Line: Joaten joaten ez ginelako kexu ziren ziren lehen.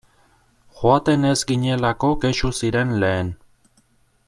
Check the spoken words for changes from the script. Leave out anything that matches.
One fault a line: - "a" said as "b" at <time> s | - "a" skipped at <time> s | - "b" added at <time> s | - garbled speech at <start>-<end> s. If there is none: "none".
- "joaten" skipped at 1.3 s
- "ziren" skipped at 3.0 s